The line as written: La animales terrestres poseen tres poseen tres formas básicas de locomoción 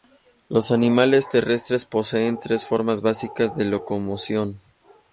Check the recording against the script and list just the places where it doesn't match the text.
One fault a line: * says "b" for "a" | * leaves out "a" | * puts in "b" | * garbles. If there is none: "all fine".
* says "Los" for "La"
* leaves out "poseen tres"